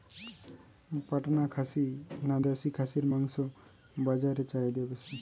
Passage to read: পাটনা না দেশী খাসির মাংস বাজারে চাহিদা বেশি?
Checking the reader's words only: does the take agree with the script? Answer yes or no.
no